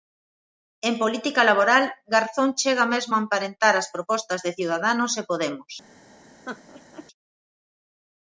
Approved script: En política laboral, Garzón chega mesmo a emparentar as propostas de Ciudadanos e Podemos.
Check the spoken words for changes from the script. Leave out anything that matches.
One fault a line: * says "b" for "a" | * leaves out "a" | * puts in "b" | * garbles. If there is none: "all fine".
all fine